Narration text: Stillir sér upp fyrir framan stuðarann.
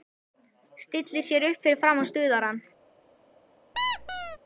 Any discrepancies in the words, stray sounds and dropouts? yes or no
yes